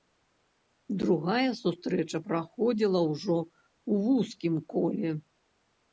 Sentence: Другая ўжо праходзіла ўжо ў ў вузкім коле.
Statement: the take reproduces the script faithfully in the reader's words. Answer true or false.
false